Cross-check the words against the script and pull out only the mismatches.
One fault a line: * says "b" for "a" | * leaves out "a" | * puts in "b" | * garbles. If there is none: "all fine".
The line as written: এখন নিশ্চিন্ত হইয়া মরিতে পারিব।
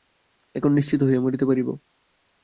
all fine